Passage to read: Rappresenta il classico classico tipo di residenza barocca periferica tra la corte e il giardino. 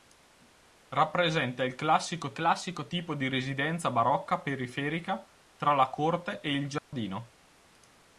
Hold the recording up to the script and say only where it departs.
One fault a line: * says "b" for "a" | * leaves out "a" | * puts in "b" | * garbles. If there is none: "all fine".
all fine